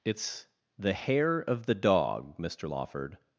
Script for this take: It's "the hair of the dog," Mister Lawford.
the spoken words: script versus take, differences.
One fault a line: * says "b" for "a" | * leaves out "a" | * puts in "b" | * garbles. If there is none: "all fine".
all fine